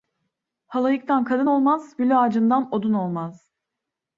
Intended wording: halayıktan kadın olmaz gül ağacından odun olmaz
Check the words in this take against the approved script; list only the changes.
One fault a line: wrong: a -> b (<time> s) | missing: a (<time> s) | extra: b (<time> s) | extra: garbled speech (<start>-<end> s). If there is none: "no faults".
no faults